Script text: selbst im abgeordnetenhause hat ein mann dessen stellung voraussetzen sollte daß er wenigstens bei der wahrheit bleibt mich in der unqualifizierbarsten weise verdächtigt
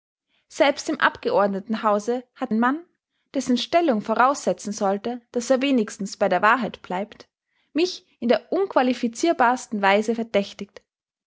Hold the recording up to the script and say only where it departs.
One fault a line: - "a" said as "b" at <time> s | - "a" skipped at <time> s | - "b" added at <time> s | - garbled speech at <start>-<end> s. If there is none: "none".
none